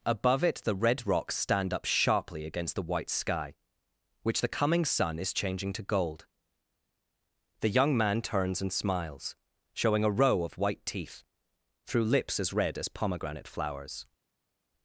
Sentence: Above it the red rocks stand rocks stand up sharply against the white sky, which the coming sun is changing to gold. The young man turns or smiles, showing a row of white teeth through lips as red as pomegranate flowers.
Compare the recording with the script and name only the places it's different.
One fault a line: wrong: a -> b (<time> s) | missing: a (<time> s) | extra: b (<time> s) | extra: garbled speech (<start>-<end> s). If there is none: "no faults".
missing: rocks stand (1.7 s)
wrong: or -> and (8.6 s)